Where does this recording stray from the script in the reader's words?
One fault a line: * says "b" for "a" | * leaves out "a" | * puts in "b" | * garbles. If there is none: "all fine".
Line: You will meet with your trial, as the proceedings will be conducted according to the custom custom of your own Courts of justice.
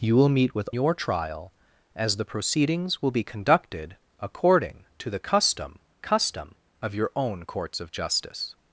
all fine